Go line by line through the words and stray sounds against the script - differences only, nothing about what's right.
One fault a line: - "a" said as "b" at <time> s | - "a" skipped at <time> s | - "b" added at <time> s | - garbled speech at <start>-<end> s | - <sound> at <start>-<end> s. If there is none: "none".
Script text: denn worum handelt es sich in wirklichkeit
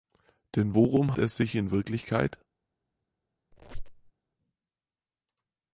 - "handelt" skipped at 1.2 s
- squeak at 3.5-4.1 s